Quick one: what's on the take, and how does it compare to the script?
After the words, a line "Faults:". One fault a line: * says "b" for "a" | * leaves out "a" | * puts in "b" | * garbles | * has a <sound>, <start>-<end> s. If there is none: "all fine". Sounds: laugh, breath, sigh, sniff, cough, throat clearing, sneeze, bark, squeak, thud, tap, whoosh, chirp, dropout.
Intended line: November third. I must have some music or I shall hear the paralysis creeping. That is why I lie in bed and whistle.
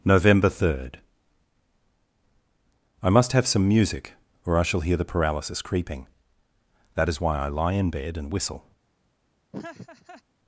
November third. I must have some music or I shall hear the paralysis creeping. That is why I lie in bed and whistle.
Faults:
* has a laugh, 9.5-10.2 s